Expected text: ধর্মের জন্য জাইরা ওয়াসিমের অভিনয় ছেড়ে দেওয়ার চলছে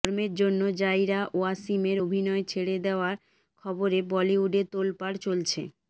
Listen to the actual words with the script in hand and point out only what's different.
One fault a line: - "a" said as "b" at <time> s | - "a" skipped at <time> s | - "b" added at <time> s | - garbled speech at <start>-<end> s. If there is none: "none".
- "খবরে বলিউডে তোলপাড়" added at 3.6 s